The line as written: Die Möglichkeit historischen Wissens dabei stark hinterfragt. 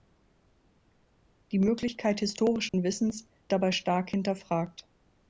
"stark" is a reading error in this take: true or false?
false